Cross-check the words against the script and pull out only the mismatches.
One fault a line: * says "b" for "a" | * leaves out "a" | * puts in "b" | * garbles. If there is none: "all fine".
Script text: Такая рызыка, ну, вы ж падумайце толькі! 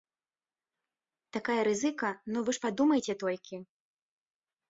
all fine